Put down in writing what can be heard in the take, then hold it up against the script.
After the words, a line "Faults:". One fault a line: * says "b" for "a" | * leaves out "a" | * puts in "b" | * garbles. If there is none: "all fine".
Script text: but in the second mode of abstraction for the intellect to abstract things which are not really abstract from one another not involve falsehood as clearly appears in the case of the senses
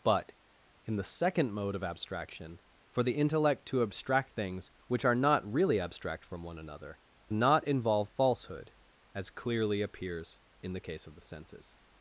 but in the second mode of abstraction for the intellect to abstract things which are not really abstract from one another not involve falsehood as clearly appears in the case of the senses
Faults:
all fine